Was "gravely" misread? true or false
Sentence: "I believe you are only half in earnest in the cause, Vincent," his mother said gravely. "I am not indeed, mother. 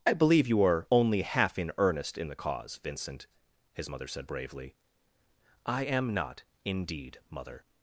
true